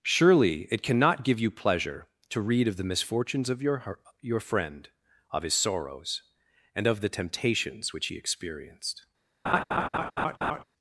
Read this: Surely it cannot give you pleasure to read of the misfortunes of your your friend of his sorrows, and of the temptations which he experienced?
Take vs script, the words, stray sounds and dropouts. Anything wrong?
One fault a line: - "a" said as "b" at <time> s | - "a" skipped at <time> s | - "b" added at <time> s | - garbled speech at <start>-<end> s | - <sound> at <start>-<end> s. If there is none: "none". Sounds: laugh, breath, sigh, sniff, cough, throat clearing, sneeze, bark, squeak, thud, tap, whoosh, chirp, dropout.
- laugh at 9.5-10.6 s